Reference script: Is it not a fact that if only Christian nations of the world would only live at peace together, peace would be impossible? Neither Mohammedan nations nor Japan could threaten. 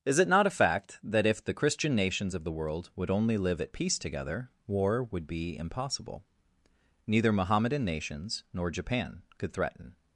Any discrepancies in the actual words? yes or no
yes